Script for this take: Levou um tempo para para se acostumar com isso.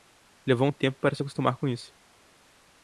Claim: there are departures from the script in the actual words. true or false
true